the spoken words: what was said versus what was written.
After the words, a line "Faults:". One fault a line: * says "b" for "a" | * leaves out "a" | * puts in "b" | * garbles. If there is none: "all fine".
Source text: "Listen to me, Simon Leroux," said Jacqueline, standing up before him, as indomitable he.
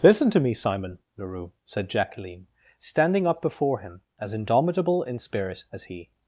"Listen to me, Simon Leroux," said Jacqueline, standing up before him, as indomitable in spirit as he.
Faults:
* puts in "in spirit as"